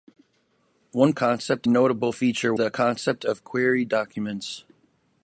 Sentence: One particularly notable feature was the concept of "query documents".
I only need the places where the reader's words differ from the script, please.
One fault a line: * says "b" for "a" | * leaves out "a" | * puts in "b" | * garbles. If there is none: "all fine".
* says "concept" for "particularly"
* leaves out "was"